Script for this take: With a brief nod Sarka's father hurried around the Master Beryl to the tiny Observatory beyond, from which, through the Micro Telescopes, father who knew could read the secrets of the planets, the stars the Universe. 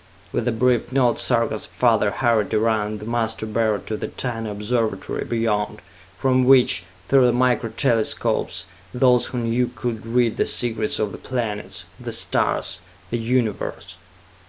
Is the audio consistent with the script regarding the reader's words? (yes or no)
no